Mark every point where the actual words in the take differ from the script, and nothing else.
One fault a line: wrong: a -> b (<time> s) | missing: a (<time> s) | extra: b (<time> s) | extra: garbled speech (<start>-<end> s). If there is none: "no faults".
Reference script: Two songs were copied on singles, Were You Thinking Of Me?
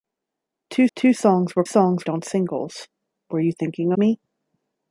extra: two (1.0 s)
wrong: copied -> songs (1.6 s)
missing: Of (3.9 s)